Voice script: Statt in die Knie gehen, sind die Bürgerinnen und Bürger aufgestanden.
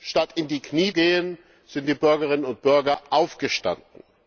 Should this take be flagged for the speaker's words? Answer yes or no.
no